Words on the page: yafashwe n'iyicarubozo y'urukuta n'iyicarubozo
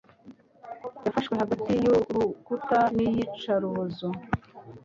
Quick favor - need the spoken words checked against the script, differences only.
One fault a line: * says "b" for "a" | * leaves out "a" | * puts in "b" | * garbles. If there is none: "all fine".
* says "hagati" for "n'iyicarubozo"